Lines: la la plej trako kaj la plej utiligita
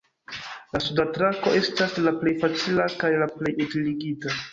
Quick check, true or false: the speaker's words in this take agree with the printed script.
false